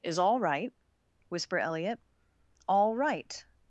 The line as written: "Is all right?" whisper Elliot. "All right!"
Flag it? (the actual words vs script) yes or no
no